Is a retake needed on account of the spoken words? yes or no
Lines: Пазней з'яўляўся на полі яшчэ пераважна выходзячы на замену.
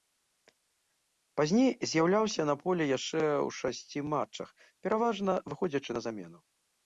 yes